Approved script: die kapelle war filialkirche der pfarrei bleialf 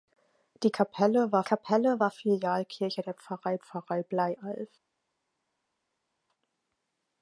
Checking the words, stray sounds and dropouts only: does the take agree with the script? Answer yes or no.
no